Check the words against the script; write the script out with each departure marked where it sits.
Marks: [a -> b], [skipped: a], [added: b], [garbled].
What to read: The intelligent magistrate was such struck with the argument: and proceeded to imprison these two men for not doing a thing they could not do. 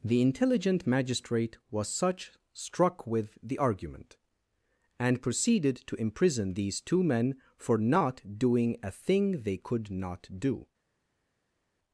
The intelligent magistrate was such struck with the argument: and proceeded to imprison these two men for not doing a thing they could not do.